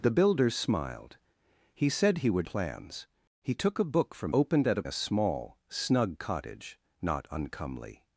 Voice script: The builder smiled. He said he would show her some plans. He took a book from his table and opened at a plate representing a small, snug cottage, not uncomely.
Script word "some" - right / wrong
wrong